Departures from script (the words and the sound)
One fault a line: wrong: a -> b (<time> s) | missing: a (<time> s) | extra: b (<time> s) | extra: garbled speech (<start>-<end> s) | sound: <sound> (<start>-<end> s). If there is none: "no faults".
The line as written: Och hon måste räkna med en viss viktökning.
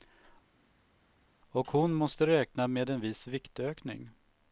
no faults